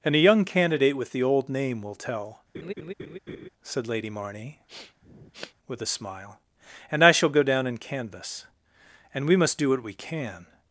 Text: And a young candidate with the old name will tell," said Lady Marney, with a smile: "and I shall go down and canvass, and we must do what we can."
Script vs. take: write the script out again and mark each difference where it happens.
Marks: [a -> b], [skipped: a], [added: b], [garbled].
And a young candidate with the old name will tell," said Lady Marney, with a smile: "and I shall go down and canvass, and we must do what we can."